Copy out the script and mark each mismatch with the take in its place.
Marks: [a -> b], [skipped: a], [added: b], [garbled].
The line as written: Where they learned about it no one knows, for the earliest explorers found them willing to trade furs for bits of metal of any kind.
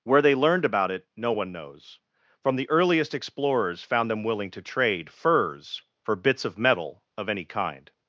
Where they learned about it no one knows, [for -> from] the earliest explorers found them willing to trade furs for bits of metal of any kind.